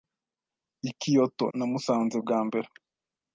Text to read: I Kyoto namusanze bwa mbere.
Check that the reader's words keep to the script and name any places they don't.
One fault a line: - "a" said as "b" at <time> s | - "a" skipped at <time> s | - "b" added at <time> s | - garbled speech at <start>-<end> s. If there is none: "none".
none